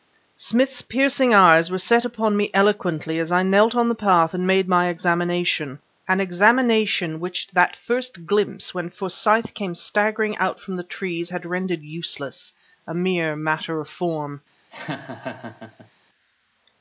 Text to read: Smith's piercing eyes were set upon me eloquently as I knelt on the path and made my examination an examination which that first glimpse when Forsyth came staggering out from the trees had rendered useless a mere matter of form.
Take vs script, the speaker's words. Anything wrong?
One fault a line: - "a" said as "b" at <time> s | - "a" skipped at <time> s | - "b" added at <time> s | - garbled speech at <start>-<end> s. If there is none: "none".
none